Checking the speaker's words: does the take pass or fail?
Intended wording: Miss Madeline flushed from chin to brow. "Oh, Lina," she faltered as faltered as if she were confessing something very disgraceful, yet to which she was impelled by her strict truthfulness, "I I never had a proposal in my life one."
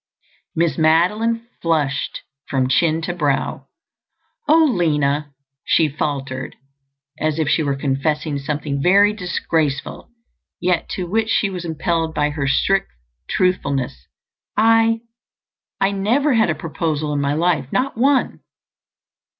fail